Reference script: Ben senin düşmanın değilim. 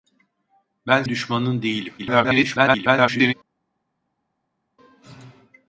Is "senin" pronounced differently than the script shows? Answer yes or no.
yes